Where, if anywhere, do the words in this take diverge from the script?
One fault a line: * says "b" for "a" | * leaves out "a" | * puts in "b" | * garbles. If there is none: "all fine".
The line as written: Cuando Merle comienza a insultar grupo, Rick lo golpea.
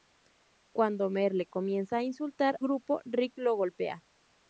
all fine